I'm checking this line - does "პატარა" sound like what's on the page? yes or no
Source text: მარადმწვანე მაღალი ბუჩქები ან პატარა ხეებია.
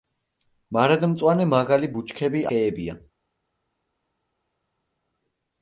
no